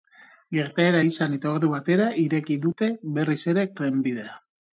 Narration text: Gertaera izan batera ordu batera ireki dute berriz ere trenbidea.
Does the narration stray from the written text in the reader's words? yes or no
yes